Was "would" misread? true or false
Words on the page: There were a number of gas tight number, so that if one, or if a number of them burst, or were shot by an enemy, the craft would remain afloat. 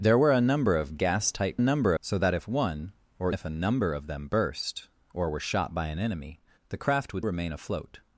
false